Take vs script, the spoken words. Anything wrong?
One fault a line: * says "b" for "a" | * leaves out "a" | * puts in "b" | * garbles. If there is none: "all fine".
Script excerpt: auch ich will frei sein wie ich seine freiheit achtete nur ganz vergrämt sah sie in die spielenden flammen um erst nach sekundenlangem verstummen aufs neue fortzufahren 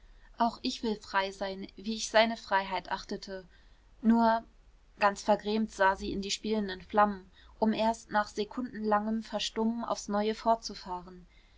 all fine